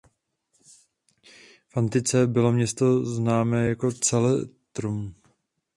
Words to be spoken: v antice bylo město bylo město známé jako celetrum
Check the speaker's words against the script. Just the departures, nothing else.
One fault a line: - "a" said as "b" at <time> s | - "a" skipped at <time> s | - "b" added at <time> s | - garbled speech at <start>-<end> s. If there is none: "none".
- "bylo město" skipped at 3.0 s